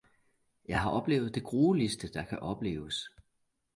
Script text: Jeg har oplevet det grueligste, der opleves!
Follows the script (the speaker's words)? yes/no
no